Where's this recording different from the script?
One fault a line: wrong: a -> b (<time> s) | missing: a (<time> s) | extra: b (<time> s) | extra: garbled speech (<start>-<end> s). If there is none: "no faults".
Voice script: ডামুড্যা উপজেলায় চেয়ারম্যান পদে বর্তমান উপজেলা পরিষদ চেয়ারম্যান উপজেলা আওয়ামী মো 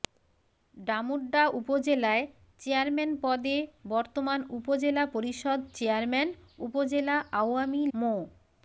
no faults